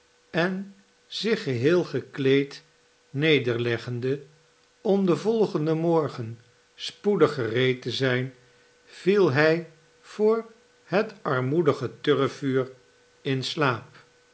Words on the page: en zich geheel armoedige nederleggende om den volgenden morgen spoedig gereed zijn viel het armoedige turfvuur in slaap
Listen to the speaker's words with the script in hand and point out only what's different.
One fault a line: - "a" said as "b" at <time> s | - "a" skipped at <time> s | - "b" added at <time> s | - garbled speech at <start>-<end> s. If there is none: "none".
- "armoedige" said as "gekleed" at 1.8 s
- "te" added at 7.8 s
- "hij voor" added at 9.3 s